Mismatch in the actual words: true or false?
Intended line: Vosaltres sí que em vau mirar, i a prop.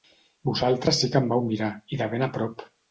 true